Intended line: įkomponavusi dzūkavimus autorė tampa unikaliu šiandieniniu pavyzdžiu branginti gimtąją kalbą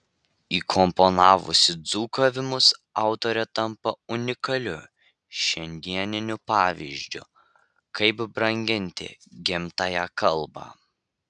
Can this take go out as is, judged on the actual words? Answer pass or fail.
fail